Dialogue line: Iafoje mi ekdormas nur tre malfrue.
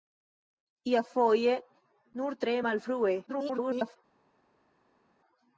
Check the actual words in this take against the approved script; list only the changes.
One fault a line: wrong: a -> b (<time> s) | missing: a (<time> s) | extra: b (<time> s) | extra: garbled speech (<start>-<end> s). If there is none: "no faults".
missing: mi ekdormas (1.5 s)
extra: garbled speech (3.3-4.0 s)